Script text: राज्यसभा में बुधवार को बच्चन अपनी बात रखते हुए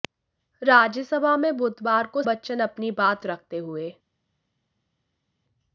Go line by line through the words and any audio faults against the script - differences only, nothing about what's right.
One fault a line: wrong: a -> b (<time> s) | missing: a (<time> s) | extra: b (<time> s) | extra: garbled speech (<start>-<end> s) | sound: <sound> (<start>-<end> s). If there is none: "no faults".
no faults